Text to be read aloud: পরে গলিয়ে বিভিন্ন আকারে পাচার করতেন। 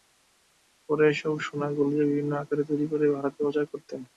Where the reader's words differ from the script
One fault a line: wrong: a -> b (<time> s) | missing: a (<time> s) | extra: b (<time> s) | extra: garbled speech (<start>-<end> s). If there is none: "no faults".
extra: এসব সোনা (1.1 s)
extra: তৈরি করে ভারতে (2.7 s)